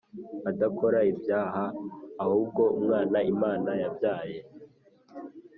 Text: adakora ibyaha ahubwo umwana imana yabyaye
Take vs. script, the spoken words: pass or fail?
pass